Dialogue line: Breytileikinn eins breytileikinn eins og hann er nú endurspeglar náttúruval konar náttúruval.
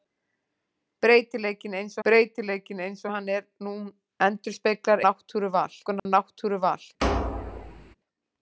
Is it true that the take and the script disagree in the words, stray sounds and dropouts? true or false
true